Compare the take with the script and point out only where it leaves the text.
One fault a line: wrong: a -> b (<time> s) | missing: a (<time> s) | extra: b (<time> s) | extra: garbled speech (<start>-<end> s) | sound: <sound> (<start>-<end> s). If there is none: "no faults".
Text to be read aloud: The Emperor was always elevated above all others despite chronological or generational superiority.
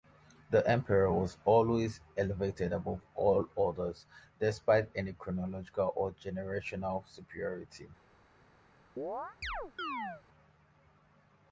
extra: any (5.0 s)
sound: chirp (9.0-10.2 s)